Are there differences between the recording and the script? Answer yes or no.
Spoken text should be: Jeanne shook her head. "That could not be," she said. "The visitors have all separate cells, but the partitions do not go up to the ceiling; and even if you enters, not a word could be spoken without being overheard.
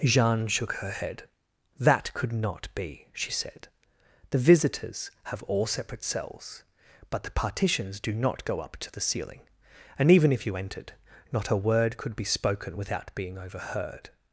yes